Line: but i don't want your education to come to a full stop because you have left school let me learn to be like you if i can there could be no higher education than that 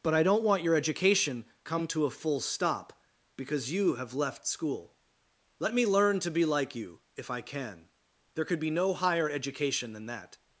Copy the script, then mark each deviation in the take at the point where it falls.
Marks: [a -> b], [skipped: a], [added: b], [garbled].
but i don't want your education [skipped: to] come to a full stop because you have left school let me learn to be like you if i can there could be no higher education than that